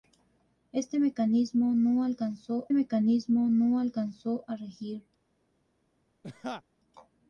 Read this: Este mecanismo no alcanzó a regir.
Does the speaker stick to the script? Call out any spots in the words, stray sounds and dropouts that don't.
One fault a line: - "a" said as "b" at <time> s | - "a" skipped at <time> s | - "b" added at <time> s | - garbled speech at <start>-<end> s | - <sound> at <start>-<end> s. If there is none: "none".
- "mecanismo no alcanzó" added at 2.7 s
- laugh at 6.2-6.6 s